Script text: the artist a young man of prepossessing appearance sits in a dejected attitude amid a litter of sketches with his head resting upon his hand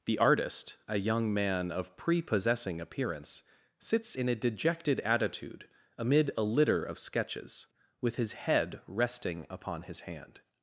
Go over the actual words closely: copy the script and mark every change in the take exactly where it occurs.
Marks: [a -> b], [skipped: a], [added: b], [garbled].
the artist a young man of prepossessing appearance sits in a dejected attitude amid a litter of sketches with his head resting upon his hand